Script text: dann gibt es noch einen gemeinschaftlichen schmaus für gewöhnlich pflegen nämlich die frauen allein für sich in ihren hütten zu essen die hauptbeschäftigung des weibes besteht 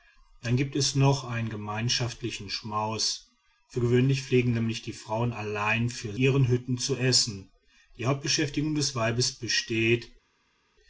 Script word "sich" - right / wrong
wrong